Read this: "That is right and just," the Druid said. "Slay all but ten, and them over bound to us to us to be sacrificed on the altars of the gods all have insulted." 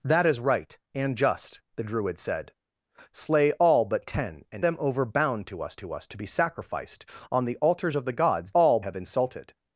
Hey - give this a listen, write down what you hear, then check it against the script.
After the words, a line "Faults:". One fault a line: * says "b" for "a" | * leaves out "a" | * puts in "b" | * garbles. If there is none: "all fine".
"That is right and just," the Druid said. "Slay all but ten, and them over bound to us to us to be sacrificed on the altars of the gods all have insulted."
Faults:
all fine